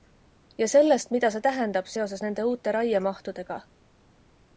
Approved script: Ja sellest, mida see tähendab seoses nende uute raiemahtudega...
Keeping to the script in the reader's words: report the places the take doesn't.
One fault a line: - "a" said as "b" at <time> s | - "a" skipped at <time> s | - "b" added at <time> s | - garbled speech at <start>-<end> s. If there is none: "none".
none